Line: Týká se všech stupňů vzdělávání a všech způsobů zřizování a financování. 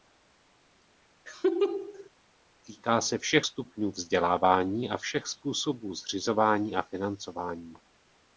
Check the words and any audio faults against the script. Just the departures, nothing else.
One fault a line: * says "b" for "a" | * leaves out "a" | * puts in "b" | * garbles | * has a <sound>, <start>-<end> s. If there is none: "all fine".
* has a laugh, 1.3-2.1 s